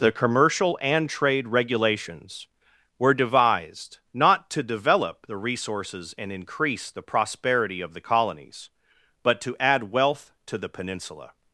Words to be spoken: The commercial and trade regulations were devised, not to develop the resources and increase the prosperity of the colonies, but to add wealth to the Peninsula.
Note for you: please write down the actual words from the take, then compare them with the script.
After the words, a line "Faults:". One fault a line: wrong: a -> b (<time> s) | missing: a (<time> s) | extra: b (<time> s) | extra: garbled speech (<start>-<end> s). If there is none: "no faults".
The commercial and trade regulations were devised, not to develop the resources and increase the prosperity of the colonies, but to add wealth to the Peninsula.
Faults:
no faults